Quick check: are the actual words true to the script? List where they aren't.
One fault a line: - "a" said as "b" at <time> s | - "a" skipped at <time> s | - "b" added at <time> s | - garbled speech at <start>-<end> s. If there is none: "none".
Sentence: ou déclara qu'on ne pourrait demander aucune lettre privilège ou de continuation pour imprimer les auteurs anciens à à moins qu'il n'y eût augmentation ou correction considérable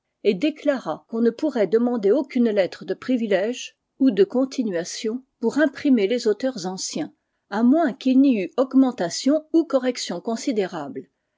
- "ou" said as "et" at 0.2 s
- "de" added at 2.9 s
- "à" skipped at 7.6 s